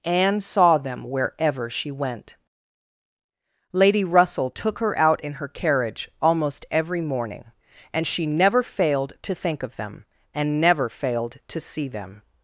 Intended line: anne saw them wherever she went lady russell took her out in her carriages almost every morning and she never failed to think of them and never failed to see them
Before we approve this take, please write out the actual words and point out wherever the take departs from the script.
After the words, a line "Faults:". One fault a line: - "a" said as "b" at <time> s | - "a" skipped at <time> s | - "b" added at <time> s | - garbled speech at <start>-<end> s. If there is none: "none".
anne saw them wherever she went lady russell took her out in her carriage almost every morning and she never failed to think of them and never failed to see them
Faults:
- "carriages" said as "carriage" at 5.5 s